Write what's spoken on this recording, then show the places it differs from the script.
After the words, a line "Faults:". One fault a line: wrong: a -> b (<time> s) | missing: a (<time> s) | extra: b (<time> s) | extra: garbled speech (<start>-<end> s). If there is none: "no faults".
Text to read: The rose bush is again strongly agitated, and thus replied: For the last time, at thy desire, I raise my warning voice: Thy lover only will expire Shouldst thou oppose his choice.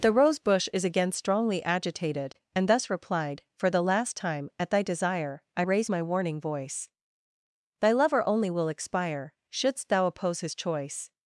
The rose bush is again strongly agitated, and thus replied: For the last time, at thy desire, I raise my warning voice: Thy lover only will expire Shouldst thou oppose his choice.
Faults:
no faults